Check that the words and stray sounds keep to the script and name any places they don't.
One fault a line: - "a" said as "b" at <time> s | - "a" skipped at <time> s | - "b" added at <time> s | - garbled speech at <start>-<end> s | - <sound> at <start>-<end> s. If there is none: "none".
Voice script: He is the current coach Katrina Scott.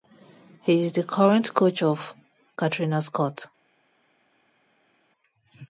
- "of" added at 1.8 s